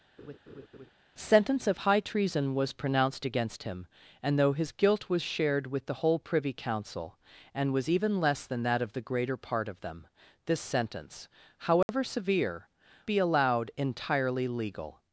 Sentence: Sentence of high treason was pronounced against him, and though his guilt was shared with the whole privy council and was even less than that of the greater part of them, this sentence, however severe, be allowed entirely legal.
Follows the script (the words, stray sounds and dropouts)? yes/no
no